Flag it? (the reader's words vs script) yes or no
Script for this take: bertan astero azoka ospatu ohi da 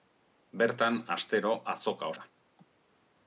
yes